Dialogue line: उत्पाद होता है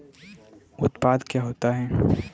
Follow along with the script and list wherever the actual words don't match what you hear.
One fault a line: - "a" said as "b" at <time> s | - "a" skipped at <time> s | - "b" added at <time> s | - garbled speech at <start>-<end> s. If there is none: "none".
- "क्या" added at 1.2 s